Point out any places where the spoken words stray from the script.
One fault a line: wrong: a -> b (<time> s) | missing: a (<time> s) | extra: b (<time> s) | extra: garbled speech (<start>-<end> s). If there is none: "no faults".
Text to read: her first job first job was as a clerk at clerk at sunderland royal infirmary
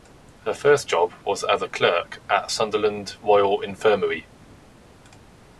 missing: first job (1.1 s)
missing: clerk at (2.5 s)